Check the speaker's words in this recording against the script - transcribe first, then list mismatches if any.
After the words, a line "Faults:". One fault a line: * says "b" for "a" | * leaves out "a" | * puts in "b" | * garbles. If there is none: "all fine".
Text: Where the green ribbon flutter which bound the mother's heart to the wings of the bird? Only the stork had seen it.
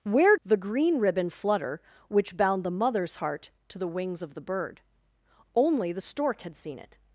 Where the green ribbon flutter which bound the mother's heart to the wings of the bird? Only the stork had seen it.
Faults:
all fine